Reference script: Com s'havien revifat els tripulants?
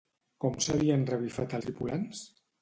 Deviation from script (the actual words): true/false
true